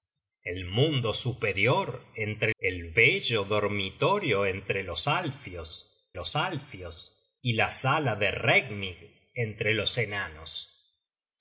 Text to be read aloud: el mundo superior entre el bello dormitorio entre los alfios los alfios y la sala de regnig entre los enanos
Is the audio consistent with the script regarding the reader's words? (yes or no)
yes